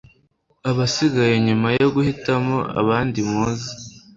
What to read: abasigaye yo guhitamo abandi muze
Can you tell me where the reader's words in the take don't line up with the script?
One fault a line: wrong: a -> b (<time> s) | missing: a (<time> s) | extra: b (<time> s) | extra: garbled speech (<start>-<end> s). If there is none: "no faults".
extra: nyuma (1.5 s)